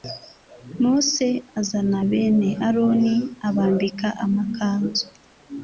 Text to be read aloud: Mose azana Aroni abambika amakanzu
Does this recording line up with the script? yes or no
no